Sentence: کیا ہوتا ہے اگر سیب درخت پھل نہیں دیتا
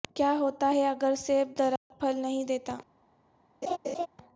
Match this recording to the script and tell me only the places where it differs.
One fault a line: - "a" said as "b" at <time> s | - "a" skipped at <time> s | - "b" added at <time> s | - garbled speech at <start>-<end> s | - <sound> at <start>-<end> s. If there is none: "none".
- dropout at 1.8-1.9 s
- laugh at 3.6-4.1 s